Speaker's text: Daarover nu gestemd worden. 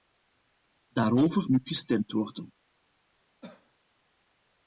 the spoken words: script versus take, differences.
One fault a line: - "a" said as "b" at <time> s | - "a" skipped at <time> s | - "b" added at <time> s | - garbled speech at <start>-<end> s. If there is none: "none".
none